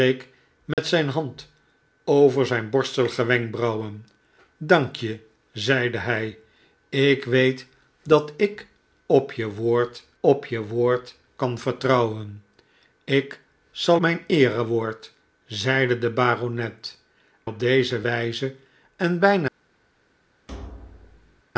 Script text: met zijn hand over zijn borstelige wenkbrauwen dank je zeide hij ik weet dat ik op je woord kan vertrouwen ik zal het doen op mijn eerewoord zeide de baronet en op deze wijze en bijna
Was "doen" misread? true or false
true